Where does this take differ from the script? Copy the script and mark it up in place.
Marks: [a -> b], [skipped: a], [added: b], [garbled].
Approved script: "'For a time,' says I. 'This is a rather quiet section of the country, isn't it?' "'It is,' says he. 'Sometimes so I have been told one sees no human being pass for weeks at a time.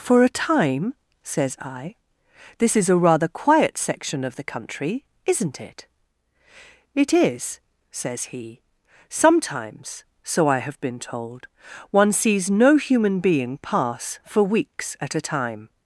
"'For a time,' says I. 'This is a rather quiet section of the country, isn't it?' "'It is,' says he. 'Sometimes so I have been told one sees no human being pass for weeks at a time.